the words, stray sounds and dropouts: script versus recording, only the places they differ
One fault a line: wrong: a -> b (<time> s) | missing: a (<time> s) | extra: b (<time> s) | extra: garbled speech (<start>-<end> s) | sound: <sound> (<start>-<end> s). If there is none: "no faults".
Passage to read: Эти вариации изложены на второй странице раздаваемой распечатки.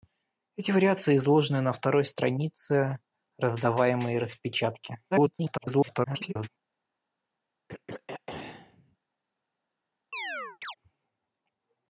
extra: garbled speech (5.1-6.5 s)
sound: throat clearing (7.7-9.0 s)
sound: chirp (10.1-10.8 s)